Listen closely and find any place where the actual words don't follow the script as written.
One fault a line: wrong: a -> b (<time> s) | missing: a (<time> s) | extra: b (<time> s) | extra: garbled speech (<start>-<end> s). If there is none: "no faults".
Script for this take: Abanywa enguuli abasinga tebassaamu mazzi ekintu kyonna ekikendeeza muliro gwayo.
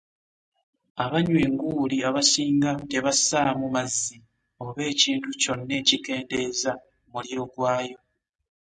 extra: oba (4.7 s)